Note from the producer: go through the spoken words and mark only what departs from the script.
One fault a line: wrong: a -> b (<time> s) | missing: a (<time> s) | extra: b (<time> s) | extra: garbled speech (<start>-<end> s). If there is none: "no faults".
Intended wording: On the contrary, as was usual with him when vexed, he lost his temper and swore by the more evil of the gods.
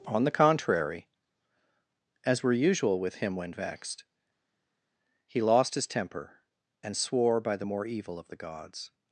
wrong: was -> were (2.4 s)